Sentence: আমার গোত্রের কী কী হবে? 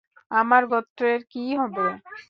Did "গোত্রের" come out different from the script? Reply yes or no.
no